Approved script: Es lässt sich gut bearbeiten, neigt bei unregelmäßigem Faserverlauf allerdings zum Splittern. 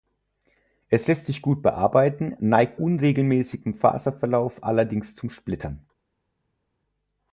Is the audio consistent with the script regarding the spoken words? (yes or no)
no